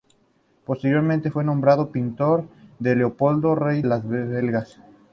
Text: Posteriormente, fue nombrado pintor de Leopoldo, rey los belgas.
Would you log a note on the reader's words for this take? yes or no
no